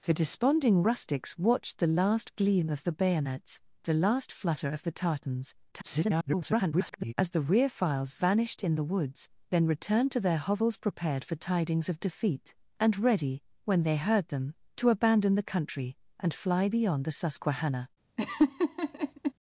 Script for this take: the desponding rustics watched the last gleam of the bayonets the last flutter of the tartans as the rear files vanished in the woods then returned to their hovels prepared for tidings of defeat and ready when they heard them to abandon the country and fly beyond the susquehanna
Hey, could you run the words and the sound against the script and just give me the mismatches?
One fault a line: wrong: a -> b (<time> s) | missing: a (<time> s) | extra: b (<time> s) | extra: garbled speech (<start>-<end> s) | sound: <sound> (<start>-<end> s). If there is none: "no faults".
extra: garbled speech (5.7-7.1 s)
sound: laugh (18.2-19.3 s)